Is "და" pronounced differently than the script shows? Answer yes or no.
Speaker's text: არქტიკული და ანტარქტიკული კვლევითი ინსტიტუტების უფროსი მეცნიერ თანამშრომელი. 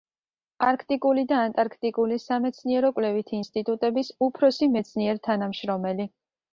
no